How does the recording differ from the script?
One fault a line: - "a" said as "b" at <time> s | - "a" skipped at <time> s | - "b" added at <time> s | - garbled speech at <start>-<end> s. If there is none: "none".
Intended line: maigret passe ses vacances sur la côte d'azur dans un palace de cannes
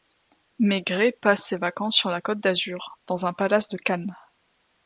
none